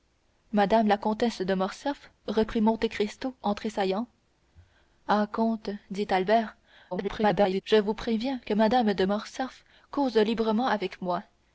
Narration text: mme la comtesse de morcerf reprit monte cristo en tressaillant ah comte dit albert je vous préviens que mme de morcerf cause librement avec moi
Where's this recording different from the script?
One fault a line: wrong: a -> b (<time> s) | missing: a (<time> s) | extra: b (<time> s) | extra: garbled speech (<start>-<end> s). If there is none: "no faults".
extra: garbled speech (6.9-7.6 s)